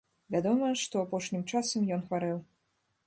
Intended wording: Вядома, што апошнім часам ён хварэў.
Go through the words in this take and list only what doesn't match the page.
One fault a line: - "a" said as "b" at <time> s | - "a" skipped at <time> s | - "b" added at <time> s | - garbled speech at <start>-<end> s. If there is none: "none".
none